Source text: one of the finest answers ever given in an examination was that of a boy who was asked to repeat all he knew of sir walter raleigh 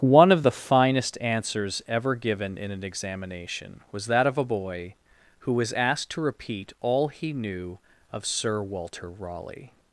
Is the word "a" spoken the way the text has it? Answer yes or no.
yes